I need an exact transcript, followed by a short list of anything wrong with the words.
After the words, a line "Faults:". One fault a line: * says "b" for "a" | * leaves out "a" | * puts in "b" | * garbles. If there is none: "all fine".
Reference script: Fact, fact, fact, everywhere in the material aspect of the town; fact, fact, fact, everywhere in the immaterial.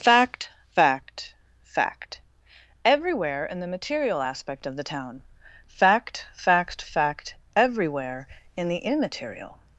Fact, fact, fact, everywhere in the material aspect of the town; fact, fact, fact, everywhere in the immaterial.
Faults:
all fine